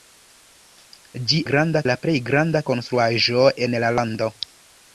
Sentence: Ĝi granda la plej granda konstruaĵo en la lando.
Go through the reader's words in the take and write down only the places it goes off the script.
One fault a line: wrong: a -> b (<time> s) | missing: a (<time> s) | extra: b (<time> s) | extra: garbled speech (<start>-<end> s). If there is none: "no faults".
no faults